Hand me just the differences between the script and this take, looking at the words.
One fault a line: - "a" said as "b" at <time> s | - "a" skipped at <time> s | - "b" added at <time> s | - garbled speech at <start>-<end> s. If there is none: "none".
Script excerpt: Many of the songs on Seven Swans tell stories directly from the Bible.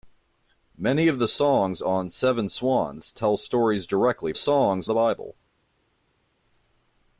- "from" said as "songs" at 4.3 s